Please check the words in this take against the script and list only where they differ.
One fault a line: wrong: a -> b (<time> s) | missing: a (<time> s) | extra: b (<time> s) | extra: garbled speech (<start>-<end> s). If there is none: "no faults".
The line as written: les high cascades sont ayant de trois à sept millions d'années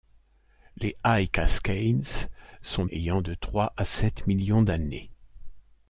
no faults